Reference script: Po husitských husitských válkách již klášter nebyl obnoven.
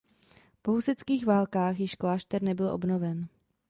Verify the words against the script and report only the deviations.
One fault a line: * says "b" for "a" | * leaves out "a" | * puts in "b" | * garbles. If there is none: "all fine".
* leaves out "husitských"